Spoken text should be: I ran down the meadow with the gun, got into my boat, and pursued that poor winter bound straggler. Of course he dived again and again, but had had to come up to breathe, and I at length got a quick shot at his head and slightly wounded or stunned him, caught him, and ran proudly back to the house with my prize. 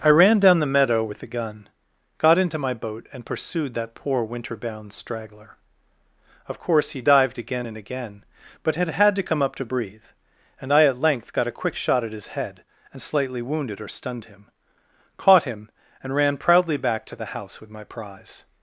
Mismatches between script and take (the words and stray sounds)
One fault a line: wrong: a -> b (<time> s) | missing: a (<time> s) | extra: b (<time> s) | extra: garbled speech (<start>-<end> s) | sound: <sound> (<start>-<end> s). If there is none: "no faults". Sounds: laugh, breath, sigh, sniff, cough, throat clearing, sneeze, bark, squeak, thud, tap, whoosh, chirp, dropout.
no faults